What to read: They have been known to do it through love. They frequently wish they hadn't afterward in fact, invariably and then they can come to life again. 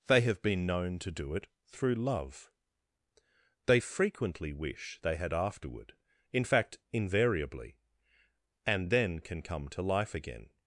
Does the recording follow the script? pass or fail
fail